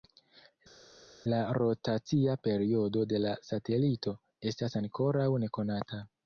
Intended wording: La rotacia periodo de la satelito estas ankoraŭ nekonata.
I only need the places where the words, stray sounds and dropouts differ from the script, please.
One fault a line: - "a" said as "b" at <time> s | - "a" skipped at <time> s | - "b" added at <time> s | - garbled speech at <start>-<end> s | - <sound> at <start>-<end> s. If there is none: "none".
none